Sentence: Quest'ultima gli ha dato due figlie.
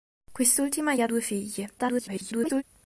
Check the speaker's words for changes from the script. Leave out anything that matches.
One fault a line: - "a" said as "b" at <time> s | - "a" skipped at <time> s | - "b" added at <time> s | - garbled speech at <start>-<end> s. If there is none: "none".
- "dato" skipped at 1.1 s
- garbled speech at 1.8-2.6 s